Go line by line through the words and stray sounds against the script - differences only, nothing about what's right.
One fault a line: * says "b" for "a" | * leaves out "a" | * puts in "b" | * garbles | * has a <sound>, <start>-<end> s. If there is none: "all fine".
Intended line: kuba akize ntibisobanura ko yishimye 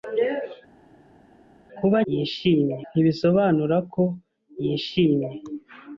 * says "yishimye" for "akize"